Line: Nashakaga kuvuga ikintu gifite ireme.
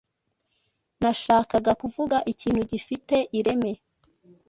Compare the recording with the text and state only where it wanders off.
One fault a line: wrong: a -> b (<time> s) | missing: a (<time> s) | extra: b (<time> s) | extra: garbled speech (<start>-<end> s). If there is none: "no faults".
no faults